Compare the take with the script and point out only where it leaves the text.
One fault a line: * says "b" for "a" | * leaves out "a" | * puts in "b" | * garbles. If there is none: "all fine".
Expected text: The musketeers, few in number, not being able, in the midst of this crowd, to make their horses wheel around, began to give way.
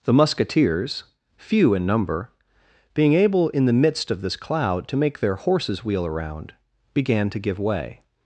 * leaves out "not"
* says "cloud" for "crowd"